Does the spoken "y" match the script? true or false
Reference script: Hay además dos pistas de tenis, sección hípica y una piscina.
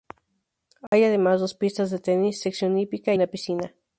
false